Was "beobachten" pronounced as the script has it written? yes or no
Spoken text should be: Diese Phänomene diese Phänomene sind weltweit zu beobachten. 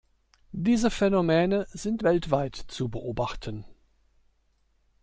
yes